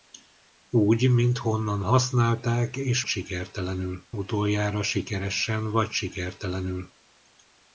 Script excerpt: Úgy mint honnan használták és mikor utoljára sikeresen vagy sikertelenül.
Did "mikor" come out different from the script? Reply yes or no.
yes